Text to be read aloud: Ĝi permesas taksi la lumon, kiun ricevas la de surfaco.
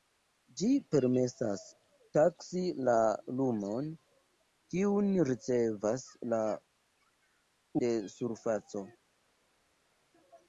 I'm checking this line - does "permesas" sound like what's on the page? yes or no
yes